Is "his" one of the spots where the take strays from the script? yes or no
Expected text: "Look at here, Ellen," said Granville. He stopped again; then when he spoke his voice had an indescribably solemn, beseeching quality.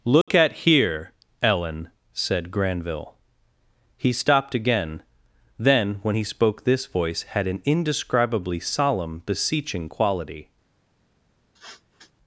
yes